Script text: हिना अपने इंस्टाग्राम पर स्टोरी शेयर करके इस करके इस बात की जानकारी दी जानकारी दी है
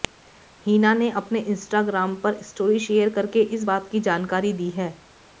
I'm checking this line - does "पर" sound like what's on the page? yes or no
yes